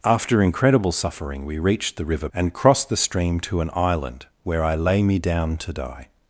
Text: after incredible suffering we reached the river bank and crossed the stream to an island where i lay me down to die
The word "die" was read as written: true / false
true